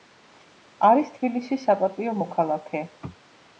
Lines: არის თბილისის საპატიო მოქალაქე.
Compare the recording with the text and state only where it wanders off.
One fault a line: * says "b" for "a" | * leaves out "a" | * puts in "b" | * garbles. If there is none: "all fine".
all fine